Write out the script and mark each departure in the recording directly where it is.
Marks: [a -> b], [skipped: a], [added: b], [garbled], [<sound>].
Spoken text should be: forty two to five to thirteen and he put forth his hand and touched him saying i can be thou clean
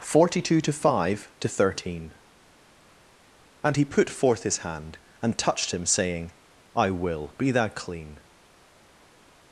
forty two to five to thirteen and he put forth his hand and touched him saying i [can -> will] be thou clean